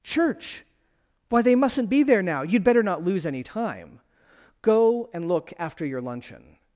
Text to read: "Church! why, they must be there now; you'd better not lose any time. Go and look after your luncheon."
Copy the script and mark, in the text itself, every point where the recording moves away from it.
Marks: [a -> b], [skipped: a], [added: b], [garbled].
"Church! why, they [must -> mustn't] be there now; you'd better not lose any time. Go and look after your luncheon."